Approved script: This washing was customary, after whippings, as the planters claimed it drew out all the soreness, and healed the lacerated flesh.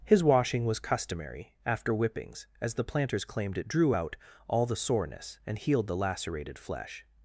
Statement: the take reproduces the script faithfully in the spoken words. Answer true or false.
false